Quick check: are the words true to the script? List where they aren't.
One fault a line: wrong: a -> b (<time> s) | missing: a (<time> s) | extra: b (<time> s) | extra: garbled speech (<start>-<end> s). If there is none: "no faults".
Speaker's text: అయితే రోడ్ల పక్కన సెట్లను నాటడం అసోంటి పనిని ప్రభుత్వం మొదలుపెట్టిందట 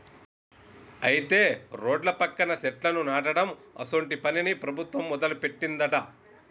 no faults